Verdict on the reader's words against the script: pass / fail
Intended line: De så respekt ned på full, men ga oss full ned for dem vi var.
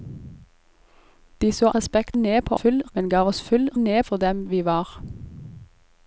pass